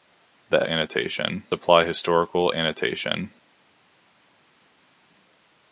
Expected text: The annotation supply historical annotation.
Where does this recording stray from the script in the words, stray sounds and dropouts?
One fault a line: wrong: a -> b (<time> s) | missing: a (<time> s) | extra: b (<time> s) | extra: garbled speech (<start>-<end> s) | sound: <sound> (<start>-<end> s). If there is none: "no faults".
no faults